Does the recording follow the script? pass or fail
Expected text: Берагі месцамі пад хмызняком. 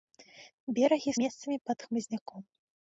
pass